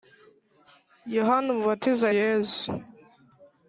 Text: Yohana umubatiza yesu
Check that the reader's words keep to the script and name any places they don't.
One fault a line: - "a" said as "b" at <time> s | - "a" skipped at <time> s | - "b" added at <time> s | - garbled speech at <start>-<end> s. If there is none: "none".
none